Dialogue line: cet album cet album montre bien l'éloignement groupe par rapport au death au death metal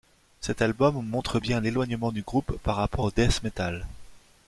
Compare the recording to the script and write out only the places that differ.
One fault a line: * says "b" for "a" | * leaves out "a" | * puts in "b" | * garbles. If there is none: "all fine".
* leaves out "cet album"
* puts in "du"
* leaves out "au death"